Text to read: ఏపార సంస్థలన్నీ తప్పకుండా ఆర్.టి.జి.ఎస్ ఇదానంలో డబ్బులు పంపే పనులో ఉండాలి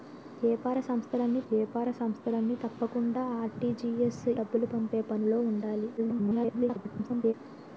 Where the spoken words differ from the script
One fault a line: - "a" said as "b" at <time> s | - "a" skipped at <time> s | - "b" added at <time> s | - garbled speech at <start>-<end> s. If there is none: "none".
- "ఏపార సంస్థలన్నీ" added at 1.5 s
- "ఇదానంలో" skipped at 4.2 s
- garbled speech at 6.0-7.3 s